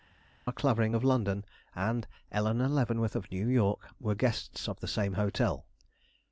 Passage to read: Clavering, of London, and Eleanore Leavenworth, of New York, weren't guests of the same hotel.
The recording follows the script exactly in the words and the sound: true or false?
false